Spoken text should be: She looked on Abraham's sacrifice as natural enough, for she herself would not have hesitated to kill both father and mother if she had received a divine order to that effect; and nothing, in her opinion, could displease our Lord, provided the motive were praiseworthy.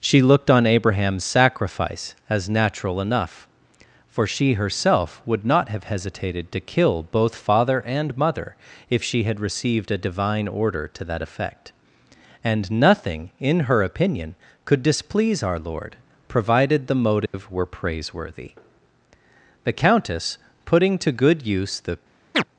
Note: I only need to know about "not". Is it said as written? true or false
true